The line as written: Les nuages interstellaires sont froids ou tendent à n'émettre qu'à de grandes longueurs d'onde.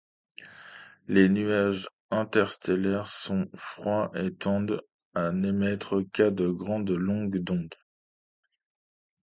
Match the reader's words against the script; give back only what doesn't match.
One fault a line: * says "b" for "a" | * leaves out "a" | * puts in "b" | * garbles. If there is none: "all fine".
* says "et" for "ou"